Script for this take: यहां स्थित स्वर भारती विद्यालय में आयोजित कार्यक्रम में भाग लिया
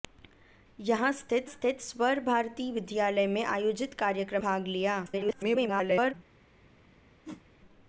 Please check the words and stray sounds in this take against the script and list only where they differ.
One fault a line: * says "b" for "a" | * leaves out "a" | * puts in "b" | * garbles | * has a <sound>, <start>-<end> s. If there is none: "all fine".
* puts in "स्थित"
* leaves out "में"
* garbles
* has a whoosh, 7.2-7.5 s